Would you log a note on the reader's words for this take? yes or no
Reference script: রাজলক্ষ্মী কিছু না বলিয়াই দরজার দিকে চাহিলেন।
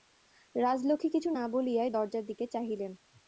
no